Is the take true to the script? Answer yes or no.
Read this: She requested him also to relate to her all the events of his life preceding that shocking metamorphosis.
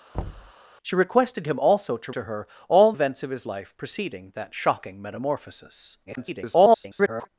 no